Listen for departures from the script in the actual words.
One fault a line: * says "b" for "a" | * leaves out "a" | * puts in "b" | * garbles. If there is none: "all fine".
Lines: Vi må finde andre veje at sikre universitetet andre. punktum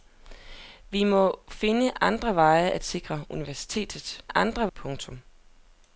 all fine